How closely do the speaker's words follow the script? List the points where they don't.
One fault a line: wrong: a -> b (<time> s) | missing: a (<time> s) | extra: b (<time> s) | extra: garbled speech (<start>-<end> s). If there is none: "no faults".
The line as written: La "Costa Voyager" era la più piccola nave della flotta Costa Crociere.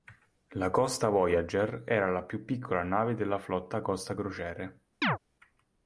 no faults